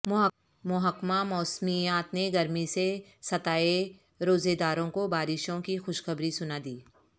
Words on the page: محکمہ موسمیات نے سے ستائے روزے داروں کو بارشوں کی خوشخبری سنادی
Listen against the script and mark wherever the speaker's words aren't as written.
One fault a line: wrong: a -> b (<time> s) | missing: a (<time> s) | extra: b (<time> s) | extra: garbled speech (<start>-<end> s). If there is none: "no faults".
extra: گرمی (2.3 s)